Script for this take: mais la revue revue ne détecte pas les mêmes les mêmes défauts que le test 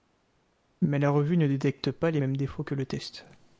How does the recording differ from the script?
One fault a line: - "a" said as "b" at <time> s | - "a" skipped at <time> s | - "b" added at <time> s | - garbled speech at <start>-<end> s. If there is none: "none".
- "revue" skipped at 1.4 s
- "les mêmes" skipped at 2.4 s